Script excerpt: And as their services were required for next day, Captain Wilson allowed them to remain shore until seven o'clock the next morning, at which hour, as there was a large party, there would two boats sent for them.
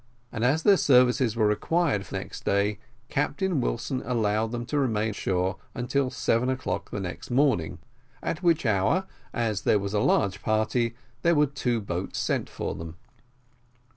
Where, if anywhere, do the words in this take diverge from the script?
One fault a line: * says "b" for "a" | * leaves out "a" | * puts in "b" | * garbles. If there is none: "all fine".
all fine